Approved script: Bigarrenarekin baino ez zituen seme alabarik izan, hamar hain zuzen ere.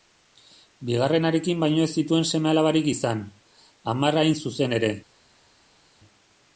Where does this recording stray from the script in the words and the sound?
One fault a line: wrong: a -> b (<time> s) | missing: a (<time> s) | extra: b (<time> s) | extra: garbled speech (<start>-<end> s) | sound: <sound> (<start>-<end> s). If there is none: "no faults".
no faults